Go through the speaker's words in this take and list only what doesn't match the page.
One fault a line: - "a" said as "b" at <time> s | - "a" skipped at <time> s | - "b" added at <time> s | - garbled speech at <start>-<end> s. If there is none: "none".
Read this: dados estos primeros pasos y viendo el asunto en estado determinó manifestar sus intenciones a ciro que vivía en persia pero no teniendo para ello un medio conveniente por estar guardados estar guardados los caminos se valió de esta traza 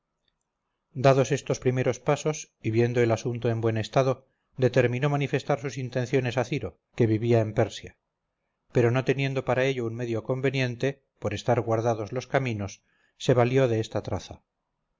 - "buen" added at 3.6 s
- "estar guardados" skipped at 12.1 s